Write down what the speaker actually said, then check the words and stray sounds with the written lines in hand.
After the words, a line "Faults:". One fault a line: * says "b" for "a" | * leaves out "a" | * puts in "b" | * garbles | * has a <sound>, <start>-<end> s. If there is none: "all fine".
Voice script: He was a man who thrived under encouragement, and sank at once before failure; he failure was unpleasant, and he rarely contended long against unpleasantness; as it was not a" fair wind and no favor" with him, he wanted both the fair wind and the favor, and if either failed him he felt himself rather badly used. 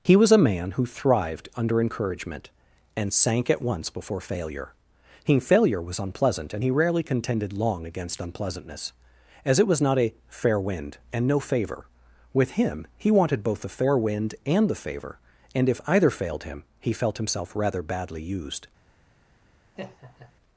He was a man who thrived under encouragement, and sank at once before failure; he failure was unpleasant, and he rarely contended long against unpleasantness; as it was not a" fair wind and no favor" with him, he wanted both the fair wind and the favor, and if either failed him he felt himself rather badly used.
Faults:
* has a laugh, 19.7-20.3 s